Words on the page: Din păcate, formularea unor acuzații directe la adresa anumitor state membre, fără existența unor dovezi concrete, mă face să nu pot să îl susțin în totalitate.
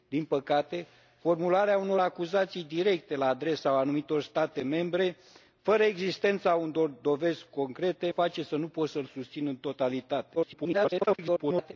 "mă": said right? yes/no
no